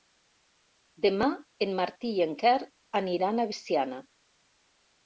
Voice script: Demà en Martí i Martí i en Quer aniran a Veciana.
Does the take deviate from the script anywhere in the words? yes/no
yes